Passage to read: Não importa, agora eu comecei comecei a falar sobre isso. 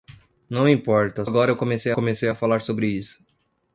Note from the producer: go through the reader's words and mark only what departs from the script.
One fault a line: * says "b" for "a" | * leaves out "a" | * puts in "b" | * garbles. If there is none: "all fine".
all fine